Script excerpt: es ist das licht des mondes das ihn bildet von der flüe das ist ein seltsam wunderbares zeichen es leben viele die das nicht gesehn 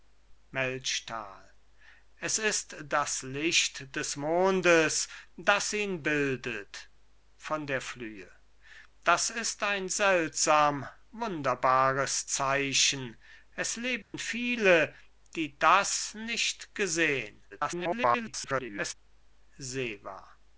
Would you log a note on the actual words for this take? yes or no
yes